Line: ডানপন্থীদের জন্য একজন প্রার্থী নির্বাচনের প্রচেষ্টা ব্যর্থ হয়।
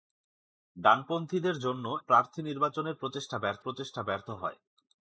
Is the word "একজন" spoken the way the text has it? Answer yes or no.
no